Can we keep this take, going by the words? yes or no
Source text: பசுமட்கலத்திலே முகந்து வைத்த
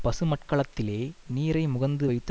no